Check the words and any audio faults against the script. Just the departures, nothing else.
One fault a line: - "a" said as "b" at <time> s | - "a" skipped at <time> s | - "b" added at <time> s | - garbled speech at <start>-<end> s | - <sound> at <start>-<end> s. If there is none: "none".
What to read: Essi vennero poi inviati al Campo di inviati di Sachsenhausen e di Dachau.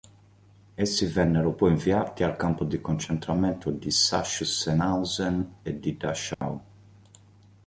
- "inviati" said as "concentramento" at 2.8 s
- dropout at 6.3-6.4 s